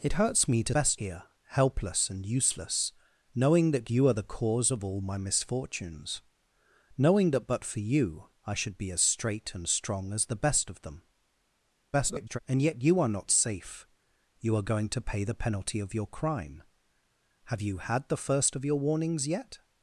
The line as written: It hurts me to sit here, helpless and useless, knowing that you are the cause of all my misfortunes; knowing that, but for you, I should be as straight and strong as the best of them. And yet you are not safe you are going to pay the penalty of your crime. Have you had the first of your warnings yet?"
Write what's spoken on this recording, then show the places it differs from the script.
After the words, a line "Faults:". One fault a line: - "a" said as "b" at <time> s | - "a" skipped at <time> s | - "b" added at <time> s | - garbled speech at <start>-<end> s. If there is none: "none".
It hurts me to best here, helpless and useless, knowing that you are the cause of all my misfortunes; knowing that, but for you, I should be as straight and strong as the best of them. [garbled] And yet you are not safe you are going to pay the penalty of your crime. Have you had the first of your warnings yet?"
Faults:
- "sit" said as "best" at 0.7 s
- garbled speech at 11.9-12.4 s